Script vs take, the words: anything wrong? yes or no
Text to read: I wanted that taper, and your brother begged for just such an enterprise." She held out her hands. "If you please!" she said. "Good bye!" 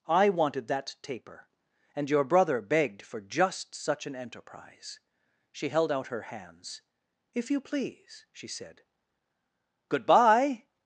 no